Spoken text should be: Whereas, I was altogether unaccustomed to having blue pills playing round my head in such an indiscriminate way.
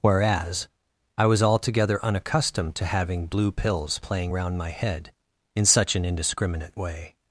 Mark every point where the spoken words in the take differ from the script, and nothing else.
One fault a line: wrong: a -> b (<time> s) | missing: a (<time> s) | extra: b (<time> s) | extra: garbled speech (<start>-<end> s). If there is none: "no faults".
no faults